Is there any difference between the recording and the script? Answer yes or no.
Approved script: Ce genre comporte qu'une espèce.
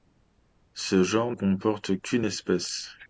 no